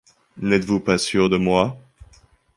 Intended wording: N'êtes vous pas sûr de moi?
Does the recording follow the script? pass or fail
pass